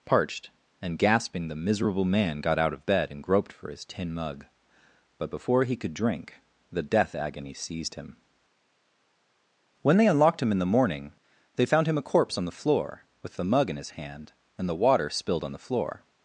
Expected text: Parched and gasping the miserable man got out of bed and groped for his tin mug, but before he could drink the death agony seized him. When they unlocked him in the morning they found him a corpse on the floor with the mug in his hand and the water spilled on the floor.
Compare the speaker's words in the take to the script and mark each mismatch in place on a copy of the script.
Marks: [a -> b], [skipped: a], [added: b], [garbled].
Parched and gasping the miserable man got out of bed and groped for his tin mug, but before he could drink the death agony seized him. When they unlocked him in the morning they found him a corpse on the floor with the mug in his hand and the water spilled on the floor.